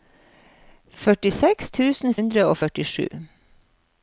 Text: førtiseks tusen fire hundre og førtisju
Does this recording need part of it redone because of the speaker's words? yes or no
yes